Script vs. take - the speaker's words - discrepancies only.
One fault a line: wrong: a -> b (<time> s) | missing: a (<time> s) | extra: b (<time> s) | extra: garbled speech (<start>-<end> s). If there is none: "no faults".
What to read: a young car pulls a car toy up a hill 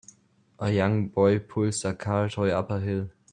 wrong: car -> boy (1.1 s)